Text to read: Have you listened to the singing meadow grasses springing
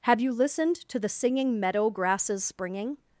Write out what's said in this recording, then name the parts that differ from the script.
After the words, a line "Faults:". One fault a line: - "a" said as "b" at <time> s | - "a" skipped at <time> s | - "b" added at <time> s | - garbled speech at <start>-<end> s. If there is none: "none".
Have you listened to the singing meadow grasses springing
Faults:
none